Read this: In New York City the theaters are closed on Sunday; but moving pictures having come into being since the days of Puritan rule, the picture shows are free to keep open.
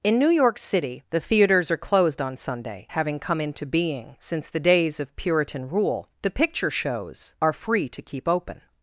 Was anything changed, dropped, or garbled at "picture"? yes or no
no